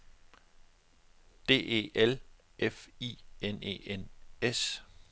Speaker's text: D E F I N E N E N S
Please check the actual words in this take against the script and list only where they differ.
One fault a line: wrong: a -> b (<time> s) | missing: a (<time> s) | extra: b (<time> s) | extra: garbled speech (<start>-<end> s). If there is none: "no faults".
extra: L (1.9 s)
missing: E N (4.1 s)